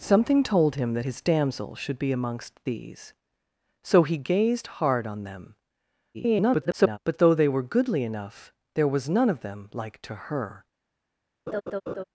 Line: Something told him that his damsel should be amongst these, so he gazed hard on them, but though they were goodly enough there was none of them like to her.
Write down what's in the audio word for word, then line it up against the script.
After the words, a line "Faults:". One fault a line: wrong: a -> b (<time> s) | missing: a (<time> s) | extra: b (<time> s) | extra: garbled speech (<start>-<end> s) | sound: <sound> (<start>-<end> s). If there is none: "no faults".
Something told him that his damsel should be amongst these, so he gazed hard on them, [garbled] but though they were goodly enough there was none of them like to her.
Faults:
extra: garbled speech (6.1-7.0 s)
sound: laugh (11.5-12.0 s)